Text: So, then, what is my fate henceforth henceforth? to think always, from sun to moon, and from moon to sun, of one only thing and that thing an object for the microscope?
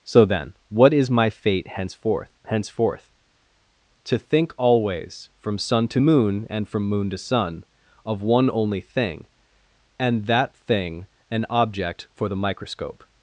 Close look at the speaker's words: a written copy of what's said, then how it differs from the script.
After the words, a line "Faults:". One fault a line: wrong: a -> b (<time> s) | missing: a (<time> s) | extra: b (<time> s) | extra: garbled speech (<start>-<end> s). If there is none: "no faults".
So, then, what is my fate henceforth henceforth? to think always, from sun to moon, and from moon to sun, of one only thing and that thing an object for the microscope?
Faults:
no faults